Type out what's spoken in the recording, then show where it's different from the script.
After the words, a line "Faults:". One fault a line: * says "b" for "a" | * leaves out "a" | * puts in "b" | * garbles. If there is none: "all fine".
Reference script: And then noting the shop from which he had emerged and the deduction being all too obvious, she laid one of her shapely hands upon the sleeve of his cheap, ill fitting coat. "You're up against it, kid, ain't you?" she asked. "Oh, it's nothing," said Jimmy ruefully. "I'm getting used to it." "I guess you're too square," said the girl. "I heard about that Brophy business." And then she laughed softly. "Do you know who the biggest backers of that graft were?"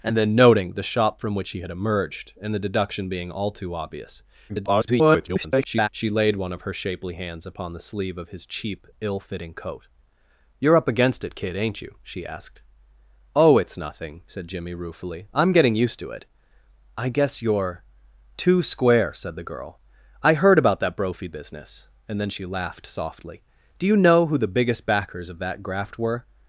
And then noting the shop from which he had emerged and the deduction being all too obvious, [garbled] she laid one of her shapely hands upon the sleeve of his cheap, ill fitting coat. "You're up against it, kid, ain't you?" she asked. "Oh, it's nothing," said Jimmy ruefully. "I'm getting used to it." "I guess you're too square," said the girl. "I heard about that Brophy business." And then she laughed softly. "Do you know who the biggest backers of that graft were?"
Faults:
* garbles